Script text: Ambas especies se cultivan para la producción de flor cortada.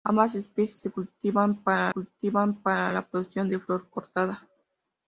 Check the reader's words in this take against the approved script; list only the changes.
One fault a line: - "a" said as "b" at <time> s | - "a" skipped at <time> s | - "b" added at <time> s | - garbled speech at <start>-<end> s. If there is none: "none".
- "cultivan para" added at 1.9 s